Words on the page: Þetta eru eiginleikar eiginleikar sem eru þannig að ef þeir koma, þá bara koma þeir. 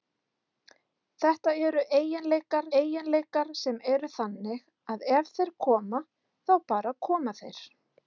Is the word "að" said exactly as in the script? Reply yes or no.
yes